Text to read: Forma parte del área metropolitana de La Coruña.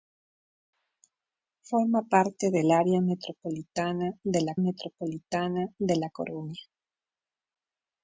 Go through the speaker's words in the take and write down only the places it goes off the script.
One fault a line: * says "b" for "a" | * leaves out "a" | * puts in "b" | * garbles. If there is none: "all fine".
* puts in "metropolitana de La"